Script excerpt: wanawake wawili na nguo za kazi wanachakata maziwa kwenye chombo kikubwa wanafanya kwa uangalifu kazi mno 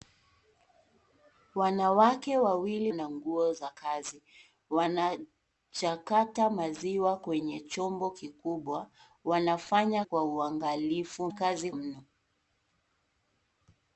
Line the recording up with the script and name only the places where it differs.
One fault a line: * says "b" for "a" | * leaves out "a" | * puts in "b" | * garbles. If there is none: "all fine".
all fine